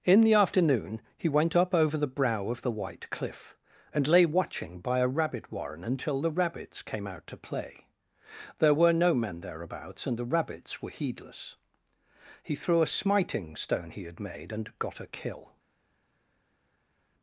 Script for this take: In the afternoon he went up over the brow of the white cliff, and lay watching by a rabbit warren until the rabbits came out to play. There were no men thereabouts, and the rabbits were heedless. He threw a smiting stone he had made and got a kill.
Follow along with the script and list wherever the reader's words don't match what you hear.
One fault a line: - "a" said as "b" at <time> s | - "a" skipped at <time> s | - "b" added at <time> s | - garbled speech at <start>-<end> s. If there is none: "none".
none